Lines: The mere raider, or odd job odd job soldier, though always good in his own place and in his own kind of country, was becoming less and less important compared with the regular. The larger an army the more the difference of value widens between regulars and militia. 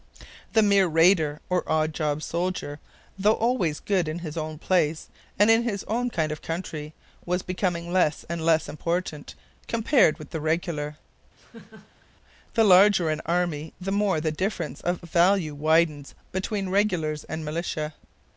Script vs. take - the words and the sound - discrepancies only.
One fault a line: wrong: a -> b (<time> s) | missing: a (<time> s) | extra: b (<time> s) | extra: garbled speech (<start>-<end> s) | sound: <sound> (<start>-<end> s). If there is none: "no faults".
missing: odd job (2.2 s)
sound: laugh (11.4-12.1 s)